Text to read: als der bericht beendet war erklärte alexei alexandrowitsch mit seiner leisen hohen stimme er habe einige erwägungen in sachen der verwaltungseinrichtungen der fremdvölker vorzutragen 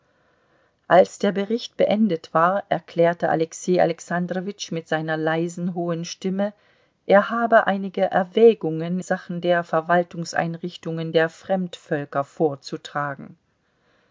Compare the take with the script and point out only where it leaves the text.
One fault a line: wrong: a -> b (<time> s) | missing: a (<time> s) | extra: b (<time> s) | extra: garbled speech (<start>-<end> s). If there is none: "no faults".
missing: in (9.0 s)